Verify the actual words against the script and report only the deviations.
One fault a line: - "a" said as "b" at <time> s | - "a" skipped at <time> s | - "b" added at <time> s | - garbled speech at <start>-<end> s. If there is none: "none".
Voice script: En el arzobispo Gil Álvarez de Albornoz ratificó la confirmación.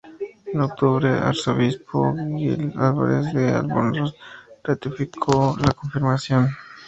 - "octubre" added at 0.6 s